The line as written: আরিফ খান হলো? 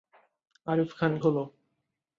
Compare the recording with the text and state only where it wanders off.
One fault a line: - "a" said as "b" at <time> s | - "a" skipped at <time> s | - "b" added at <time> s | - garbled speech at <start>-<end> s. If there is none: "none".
none